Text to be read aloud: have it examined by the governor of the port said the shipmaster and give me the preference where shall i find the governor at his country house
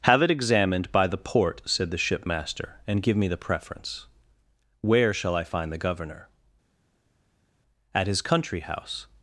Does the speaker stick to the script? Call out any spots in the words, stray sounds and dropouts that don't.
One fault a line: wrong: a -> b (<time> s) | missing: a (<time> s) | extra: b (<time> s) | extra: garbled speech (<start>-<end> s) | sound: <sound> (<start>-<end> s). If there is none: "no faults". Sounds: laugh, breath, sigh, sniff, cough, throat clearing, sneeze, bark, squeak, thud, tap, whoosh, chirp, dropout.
missing: governor of the (1.2 s)